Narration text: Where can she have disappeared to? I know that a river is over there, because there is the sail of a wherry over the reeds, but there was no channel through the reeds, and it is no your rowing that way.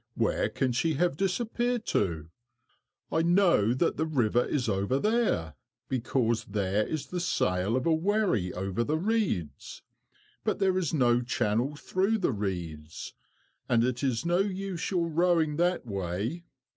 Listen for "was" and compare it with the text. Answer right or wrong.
wrong